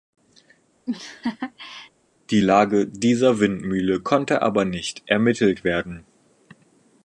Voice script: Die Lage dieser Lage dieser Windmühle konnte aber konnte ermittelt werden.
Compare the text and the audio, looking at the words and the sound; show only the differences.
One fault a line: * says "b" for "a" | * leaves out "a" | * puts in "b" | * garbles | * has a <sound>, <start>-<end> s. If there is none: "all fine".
* has a laugh, 0.9-1.9 s
* leaves out "Lage dieser"
* says "nicht" for "konnte"